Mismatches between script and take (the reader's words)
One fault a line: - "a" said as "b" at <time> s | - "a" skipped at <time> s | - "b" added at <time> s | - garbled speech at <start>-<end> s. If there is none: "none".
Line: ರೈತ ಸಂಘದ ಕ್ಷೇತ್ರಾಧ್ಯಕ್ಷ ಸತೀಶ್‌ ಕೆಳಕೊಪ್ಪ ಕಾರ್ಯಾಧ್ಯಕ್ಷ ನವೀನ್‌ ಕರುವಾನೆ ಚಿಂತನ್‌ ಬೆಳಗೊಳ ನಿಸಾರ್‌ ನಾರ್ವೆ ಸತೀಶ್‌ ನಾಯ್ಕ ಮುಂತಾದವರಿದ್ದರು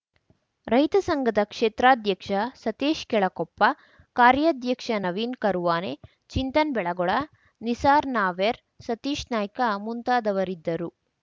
none